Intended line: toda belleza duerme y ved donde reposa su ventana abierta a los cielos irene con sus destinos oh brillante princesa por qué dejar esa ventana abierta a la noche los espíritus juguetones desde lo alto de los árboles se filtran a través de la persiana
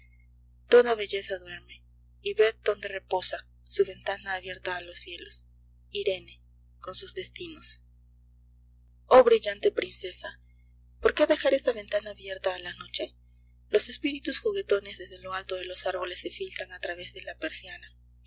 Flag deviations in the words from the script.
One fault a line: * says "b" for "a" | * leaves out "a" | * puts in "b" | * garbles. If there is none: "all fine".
all fine